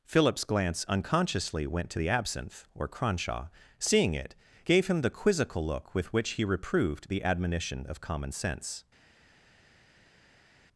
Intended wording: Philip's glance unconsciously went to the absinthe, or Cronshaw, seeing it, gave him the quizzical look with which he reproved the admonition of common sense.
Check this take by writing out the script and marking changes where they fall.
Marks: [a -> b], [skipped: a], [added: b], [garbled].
Philip's glance unconsciously went to the absinthe, or Cronshaw, seeing it, gave him the quizzical look with which he reproved the admonition of common sense.